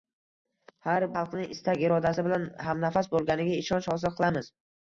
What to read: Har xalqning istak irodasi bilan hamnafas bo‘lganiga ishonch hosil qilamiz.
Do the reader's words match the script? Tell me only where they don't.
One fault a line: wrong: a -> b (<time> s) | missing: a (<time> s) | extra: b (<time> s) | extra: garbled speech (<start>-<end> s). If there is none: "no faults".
no faults